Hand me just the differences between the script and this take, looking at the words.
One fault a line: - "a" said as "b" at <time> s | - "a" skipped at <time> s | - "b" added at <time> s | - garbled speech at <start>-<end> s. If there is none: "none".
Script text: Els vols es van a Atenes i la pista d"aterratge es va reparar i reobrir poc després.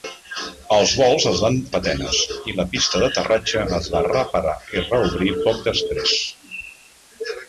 none